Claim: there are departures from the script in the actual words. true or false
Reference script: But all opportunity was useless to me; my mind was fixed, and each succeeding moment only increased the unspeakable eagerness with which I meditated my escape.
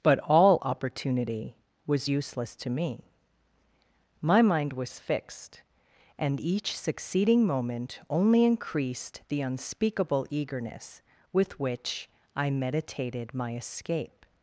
false